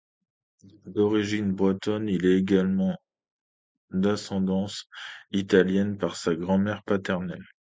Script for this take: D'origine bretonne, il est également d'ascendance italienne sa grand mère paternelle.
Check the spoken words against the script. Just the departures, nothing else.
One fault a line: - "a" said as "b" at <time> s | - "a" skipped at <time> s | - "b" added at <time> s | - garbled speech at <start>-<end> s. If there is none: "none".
- "par" added at 6.0 s